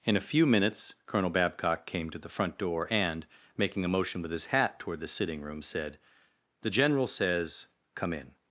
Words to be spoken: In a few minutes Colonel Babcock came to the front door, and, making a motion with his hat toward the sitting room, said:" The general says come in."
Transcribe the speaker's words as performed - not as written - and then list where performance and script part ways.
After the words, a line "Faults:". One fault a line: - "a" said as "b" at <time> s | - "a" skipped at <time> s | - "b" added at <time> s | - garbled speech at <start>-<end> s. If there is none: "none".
In a few minutes Colonel Babcock came to the front door, and, making a motion with his hat toward the sitting room, said:" The general says come in."
Faults:
none